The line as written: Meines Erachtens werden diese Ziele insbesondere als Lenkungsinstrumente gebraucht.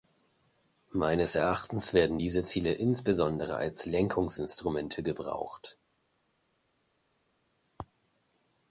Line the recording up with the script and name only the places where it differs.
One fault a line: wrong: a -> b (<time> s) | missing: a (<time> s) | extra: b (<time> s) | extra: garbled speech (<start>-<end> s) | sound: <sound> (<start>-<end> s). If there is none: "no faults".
no faults